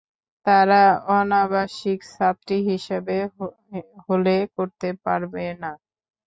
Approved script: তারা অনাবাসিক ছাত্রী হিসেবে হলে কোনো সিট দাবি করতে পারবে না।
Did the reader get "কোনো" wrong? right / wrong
wrong